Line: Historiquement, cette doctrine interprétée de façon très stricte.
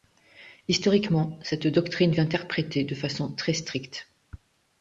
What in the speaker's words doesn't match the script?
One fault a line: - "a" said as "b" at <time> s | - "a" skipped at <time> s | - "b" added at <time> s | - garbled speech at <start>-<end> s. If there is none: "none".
none